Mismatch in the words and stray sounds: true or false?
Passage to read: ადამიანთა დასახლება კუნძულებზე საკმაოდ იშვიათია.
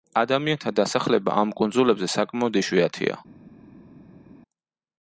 true